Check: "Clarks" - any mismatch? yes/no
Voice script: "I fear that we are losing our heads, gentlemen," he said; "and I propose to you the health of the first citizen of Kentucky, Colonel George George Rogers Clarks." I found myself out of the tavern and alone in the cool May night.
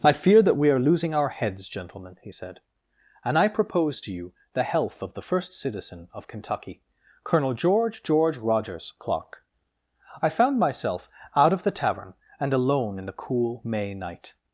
yes